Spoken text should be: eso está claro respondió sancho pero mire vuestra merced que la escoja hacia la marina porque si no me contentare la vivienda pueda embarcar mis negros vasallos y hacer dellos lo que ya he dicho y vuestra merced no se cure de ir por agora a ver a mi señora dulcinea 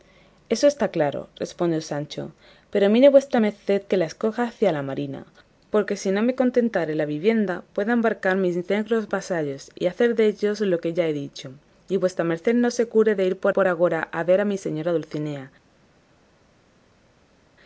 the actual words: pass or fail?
fail